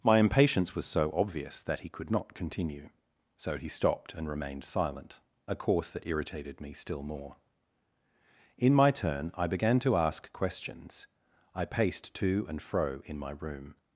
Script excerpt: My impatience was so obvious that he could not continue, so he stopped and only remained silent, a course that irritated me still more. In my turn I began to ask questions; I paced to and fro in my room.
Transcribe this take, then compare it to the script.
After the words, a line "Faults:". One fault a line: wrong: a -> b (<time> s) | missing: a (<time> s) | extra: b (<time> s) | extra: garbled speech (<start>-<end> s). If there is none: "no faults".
My impatience was so obvious that he could not continue, so he stopped and remained silent, a course that irritated me still more. In my turn I began to ask questions; I paced to and fro in my room.
Faults:
missing: only (4.3 s)